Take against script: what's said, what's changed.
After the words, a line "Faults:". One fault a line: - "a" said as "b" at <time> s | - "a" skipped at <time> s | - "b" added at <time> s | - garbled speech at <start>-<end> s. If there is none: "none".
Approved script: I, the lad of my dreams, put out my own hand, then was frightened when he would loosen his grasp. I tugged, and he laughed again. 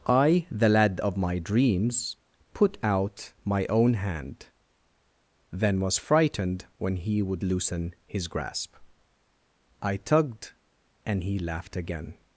I, the lad of my dreams, put out my own hand, then was frightened when he would loosen his grasp. I tugged, and he laughed again.
Faults:
none